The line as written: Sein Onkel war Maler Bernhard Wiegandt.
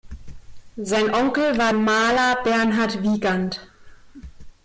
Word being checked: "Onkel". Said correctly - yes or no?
yes